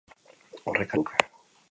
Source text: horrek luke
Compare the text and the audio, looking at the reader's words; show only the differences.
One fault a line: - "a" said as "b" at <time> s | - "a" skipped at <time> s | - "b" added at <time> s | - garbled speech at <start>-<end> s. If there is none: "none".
none